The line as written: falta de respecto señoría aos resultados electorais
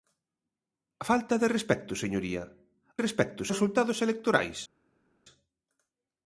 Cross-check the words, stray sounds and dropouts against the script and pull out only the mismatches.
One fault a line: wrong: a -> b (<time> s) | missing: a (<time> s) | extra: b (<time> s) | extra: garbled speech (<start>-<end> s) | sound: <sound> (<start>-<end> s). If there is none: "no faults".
wrong: aos -> respecto (3.0 s)